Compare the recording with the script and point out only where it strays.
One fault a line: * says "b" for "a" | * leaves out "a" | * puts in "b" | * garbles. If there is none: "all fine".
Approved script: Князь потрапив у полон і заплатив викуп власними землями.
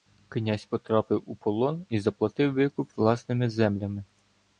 all fine